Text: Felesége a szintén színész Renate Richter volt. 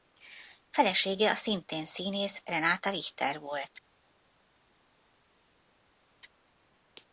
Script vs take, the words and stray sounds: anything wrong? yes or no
no